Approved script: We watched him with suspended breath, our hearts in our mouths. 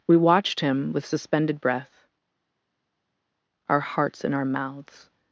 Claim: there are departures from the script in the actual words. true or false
false